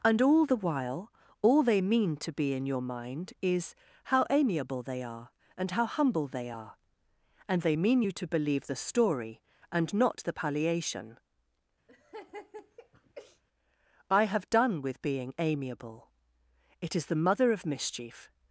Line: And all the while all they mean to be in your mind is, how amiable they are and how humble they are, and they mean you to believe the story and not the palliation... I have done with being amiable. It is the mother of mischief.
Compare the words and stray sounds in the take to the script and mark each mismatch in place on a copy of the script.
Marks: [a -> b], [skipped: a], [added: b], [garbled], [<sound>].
And all the while all they mean to be in your mind is, how amiable they are and how humble they are, and they mean you to believe the story and not the palliation... [laugh] I have done with being amiable. It is the mother of mischief.